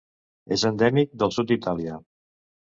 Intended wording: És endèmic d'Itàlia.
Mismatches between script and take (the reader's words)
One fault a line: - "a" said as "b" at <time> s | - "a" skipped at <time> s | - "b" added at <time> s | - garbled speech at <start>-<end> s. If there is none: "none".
- "del sud" added at 1.2 s